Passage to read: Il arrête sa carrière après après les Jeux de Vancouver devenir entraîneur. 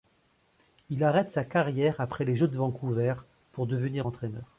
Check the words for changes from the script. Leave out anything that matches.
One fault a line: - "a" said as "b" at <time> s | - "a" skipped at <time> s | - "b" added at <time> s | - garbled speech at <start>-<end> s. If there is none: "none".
- "après" skipped at 2.2 s
- "pour" added at 3.5 s